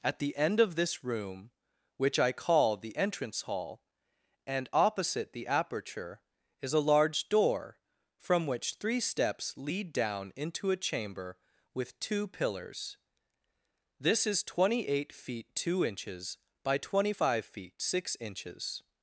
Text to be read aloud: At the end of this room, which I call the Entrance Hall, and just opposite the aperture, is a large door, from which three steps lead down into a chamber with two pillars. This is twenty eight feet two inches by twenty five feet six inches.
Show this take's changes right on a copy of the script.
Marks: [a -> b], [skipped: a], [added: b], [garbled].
At the end of this room, which I call the Entrance Hall, and [skipped: just] opposite the aperture, is a large door, from which three steps lead down into a chamber with two pillars. This is twenty eight feet two inches by twenty five feet six inches.